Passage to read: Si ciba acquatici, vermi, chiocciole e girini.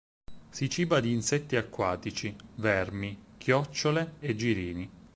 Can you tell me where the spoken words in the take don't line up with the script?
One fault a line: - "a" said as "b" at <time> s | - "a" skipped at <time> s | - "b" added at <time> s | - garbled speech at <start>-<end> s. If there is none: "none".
- "di insetti" added at 1.0 s